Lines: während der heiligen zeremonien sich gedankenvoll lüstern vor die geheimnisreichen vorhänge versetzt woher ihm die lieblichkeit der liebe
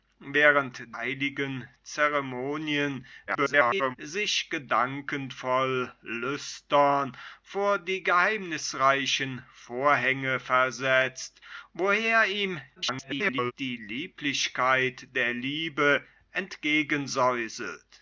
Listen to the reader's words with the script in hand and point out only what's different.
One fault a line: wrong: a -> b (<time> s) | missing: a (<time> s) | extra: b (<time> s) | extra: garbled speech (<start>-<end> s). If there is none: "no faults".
missing: der (0.9 s)
extra: garbled speech (3.3-4.0 s)
extra: garbled speech (12.8-13.5 s)